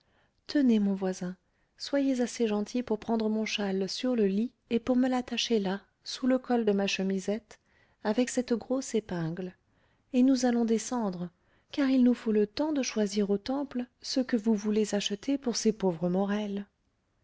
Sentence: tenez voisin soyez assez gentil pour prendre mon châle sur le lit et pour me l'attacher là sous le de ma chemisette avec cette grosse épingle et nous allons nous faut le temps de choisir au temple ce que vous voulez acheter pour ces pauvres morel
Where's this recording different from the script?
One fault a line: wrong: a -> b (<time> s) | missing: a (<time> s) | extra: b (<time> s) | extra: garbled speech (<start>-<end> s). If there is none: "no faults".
extra: mon (0.8 s)
extra: col (6.4 s)
extra: descendre car il (10.7 s)